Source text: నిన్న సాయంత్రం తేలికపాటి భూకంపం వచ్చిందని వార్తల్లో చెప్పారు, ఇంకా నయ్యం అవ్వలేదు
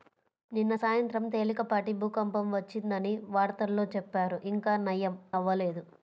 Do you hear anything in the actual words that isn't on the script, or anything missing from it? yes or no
no